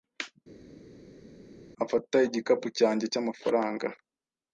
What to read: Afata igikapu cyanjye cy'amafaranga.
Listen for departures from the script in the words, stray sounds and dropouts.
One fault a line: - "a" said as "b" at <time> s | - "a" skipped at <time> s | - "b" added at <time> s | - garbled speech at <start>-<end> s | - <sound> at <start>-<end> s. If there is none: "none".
none